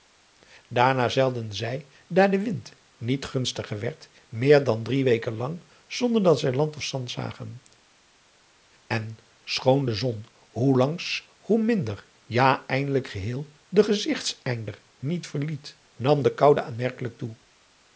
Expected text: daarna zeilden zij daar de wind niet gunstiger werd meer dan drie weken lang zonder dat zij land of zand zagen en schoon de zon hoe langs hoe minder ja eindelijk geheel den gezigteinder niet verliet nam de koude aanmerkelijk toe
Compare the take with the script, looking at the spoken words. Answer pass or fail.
pass